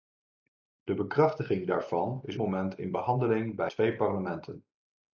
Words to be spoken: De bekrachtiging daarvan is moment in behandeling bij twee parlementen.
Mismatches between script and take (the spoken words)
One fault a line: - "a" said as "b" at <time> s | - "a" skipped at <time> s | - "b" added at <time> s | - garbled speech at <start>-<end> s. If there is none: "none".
none